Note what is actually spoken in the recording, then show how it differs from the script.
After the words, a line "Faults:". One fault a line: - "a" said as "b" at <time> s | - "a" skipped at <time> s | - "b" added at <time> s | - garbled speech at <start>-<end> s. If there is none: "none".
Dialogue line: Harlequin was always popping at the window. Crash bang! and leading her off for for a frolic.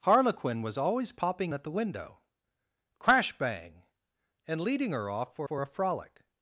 Harlequin was always popping at the window. Crash bang! and leading her off for for a frolic.
Faults:
none